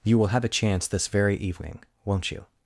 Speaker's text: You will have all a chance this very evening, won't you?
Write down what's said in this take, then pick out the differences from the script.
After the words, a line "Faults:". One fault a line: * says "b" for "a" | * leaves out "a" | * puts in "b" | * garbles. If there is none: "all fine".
You will have a chance this very evening, won't you?
Faults:
* leaves out "all"